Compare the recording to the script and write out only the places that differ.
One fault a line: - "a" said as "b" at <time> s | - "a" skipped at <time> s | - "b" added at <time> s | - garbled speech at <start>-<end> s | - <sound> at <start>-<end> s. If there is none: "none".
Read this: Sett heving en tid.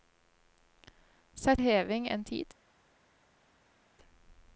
none